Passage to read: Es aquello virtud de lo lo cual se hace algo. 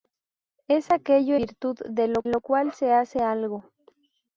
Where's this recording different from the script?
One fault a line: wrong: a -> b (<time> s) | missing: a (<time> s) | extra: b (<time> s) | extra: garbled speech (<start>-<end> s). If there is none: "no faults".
no faults